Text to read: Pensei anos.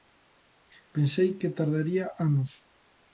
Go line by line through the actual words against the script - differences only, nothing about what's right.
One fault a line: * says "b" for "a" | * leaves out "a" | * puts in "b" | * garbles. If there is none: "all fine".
* puts in "que tardaría"